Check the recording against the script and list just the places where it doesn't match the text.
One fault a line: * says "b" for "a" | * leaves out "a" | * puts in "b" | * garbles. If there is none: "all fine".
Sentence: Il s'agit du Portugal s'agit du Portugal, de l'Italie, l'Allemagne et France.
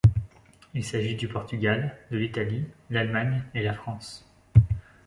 * leaves out "s'agit du Portugal"
* puts in "la"